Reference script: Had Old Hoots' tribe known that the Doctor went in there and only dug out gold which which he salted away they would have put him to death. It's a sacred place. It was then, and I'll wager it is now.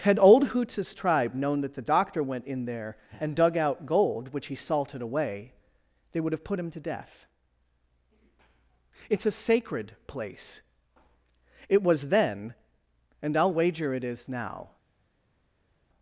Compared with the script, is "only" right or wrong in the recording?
wrong